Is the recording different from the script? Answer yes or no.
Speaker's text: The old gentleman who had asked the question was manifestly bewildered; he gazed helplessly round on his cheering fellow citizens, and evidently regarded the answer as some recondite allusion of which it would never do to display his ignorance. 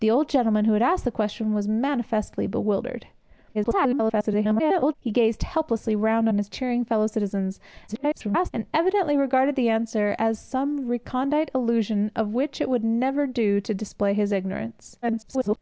yes